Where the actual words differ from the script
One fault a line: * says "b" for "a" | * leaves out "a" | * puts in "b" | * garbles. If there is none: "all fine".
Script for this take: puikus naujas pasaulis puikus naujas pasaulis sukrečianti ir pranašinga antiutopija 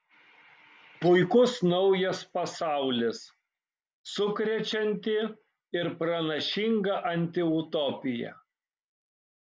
* leaves out "puikus naujas pasaulis"